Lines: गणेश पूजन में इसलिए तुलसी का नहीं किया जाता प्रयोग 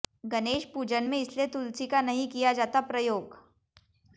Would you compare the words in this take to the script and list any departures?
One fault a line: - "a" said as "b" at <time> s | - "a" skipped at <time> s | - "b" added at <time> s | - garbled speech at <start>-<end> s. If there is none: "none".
none